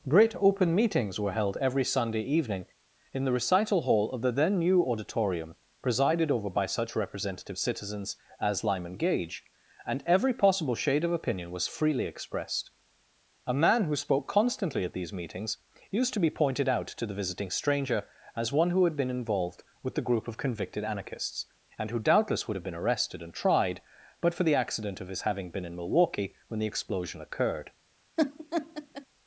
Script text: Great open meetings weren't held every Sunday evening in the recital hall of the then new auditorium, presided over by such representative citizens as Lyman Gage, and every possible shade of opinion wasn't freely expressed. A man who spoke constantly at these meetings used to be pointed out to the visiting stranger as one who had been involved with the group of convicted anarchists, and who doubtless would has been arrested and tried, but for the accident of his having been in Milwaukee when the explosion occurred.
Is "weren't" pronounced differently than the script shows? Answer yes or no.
yes